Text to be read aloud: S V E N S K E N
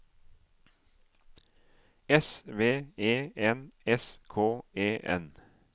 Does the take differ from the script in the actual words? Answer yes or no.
no